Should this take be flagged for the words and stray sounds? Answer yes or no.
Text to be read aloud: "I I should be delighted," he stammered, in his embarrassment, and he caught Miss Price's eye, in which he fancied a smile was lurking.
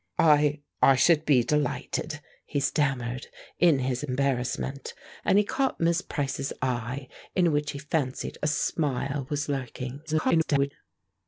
yes